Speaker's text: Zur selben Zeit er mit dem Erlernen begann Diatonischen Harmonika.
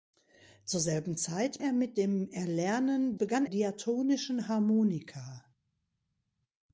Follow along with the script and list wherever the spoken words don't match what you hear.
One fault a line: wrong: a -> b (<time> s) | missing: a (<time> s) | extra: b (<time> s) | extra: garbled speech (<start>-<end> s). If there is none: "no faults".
no faults